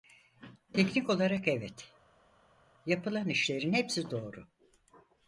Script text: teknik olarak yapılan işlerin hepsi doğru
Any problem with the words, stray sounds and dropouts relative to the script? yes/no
yes